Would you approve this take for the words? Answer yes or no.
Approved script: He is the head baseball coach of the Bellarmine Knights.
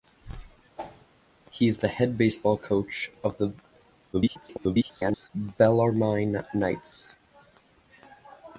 no